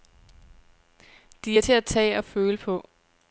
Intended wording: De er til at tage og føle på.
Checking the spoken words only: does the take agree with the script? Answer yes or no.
yes